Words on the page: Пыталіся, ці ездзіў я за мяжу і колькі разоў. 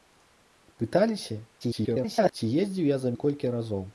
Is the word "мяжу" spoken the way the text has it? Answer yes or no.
no